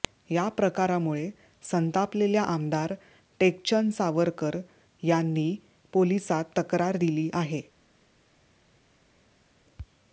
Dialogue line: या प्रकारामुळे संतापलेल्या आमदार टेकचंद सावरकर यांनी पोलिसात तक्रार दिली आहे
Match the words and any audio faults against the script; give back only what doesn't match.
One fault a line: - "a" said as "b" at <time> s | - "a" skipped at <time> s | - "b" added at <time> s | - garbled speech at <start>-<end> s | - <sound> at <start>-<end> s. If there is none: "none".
none